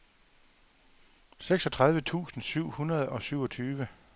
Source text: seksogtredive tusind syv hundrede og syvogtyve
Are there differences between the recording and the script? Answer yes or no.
no